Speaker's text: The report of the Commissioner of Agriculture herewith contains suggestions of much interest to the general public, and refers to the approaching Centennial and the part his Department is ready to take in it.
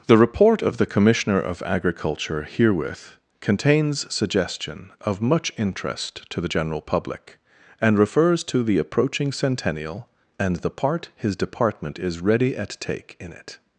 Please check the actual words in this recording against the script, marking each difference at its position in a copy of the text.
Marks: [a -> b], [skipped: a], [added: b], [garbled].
The report of the Commissioner of Agriculture herewith contains [suggestions -> suggestion] of much interest to the general public, and refers to the approaching Centennial and the part his Department is ready [to -> at] take in it.